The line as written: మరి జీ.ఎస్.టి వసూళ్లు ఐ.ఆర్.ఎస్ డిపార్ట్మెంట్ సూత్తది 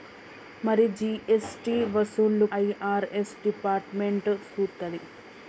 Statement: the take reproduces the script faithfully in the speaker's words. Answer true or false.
true